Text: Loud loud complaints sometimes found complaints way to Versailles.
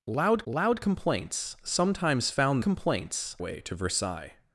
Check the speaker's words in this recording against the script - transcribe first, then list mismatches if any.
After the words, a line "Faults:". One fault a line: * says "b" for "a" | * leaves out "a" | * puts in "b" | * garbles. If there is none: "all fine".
Loud loud complaints sometimes found complaints way to Versailles.
Faults:
all fine